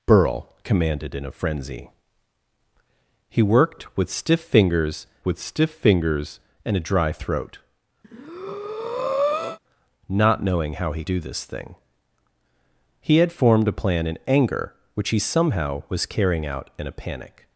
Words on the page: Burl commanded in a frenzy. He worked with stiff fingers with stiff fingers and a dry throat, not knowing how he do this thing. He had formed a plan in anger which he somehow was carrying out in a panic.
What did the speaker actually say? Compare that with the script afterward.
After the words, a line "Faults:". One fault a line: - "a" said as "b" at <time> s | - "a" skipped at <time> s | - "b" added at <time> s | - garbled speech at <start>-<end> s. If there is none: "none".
Burl commanded in a frenzy. He worked with stiff fingers with stiff fingers and a dry throat, not knowing how he do this thing. He had formed a plan in anger which he somehow was carrying out in a panic.
Faults:
none